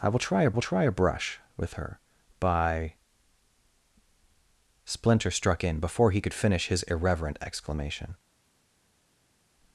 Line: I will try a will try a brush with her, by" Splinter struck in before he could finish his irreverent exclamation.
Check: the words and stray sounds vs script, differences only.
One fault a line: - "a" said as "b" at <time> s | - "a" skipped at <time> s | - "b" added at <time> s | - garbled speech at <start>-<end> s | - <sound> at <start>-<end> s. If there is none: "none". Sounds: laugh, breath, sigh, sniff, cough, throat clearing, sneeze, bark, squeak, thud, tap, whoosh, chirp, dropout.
none